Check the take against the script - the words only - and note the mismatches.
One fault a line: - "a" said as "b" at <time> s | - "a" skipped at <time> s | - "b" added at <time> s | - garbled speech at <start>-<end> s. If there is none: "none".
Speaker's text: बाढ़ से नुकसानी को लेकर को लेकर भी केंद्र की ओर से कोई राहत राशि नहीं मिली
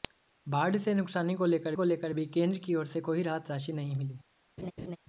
none